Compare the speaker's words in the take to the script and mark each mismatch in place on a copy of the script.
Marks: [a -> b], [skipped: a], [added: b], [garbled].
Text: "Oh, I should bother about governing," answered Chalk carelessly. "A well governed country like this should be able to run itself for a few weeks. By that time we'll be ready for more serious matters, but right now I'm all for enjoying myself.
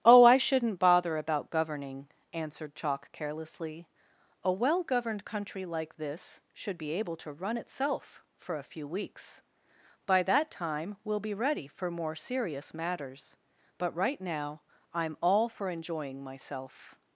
"Oh, I [should -> shouldn't] bother about governing," answered Chalk carelessly. "A well governed country like this should be able to run itself for a few weeks. By that time we'll be ready for more serious matters, but right now I'm all for enjoying myself.